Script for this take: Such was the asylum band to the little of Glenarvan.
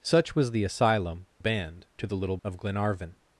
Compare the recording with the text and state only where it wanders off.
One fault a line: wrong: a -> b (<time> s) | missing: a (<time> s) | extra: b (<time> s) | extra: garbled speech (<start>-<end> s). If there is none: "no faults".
no faults